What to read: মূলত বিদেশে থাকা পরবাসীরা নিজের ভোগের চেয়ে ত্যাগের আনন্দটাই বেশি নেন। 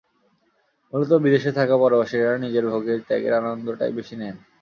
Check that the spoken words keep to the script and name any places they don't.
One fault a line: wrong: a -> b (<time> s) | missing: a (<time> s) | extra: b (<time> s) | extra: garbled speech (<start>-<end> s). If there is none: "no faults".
missing: চেয়ে (3.0 s)